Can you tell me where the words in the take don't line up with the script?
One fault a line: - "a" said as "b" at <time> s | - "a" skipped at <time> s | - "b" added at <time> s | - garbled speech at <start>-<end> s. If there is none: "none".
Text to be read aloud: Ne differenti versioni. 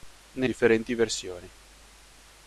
none